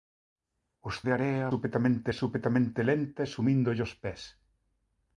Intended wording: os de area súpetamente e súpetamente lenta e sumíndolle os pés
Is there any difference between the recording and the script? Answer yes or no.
no